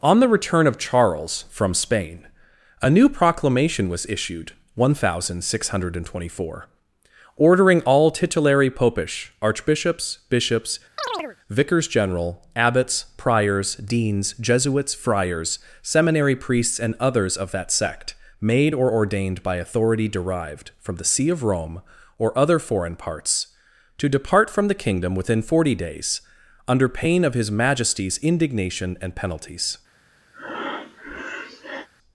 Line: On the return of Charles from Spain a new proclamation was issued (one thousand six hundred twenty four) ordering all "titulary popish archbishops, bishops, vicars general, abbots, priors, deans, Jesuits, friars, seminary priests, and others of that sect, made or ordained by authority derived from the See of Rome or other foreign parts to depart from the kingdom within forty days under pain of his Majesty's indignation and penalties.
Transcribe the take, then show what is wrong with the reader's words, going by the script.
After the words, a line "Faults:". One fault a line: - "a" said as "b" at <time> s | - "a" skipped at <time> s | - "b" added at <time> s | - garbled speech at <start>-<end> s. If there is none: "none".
On the return of Charles from Spain a new proclamation was issued (one thousand six hundred twenty four) ordering all "titulary popish archbishops, bishops, vicars general, abbots, priors, deans, Jesuits, friars, seminary priests, and others of that sect, made or ordained by authority derived from the See of Rome or other foreign parts to depart from the kingdom within forty days under pain of his Majesty's indignation and penalties.
Faults:
none